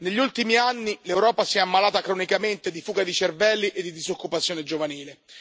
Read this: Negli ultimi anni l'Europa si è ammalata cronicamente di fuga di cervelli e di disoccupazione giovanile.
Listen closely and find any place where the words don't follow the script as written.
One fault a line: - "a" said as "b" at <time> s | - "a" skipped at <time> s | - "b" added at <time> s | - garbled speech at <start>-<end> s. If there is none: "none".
none